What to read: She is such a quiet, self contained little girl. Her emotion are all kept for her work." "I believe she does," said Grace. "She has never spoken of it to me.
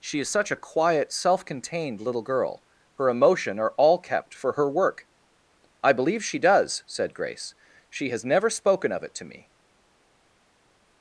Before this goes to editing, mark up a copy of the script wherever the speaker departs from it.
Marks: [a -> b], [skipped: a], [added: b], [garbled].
She is such a quiet, self contained little girl. Her emotion are all kept for her work." "I believe she does," said Grace. "She has never spoken of it to me.